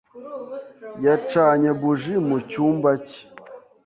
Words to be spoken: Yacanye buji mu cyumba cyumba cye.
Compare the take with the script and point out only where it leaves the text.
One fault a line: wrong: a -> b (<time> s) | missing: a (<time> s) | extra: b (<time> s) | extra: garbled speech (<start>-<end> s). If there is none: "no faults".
missing: cyumba (2.9 s)